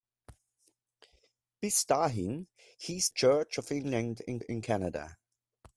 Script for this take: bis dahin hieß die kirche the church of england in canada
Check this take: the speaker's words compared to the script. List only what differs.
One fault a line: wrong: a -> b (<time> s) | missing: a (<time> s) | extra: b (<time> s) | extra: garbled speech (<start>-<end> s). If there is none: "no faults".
missing: die kirche the (3.1 s)
extra: in (4.4 s)